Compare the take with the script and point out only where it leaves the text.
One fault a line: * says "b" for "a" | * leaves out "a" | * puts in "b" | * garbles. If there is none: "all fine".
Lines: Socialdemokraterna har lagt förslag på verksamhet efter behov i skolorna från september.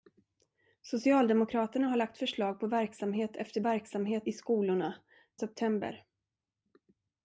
* says "verksamhet" for "behov"
* leaves out "från"